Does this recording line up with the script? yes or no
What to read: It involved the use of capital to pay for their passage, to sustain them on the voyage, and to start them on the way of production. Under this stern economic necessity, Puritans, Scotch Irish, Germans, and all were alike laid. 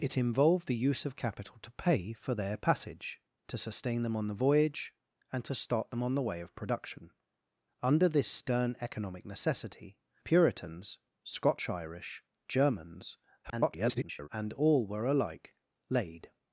no